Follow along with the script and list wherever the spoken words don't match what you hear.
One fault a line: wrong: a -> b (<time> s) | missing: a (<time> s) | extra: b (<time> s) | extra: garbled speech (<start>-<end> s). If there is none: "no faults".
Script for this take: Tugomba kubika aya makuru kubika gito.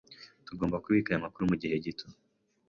wrong: kubika -> mugihe (1.5 s)